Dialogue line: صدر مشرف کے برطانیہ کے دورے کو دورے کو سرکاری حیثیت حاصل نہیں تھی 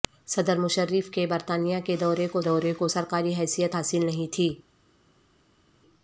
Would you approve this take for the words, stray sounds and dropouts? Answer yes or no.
yes